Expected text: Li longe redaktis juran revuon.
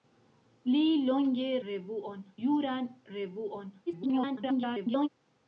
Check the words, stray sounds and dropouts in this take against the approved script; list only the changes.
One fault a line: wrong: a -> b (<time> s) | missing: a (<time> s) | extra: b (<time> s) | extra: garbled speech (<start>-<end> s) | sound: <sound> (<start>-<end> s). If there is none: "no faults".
wrong: redaktis -> revuon (1.7 s)
extra: garbled speech (3.9-5.1 s)